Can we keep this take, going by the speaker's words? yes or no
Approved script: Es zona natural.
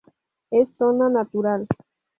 yes